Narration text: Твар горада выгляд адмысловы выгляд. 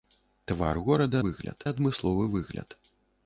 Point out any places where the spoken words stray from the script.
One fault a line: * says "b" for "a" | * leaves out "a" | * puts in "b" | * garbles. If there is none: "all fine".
all fine